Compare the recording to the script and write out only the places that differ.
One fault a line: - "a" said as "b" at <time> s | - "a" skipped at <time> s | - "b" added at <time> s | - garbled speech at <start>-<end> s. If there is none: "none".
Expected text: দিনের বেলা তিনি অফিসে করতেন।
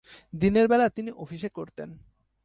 none